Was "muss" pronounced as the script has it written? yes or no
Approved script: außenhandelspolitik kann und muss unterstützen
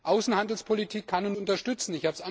no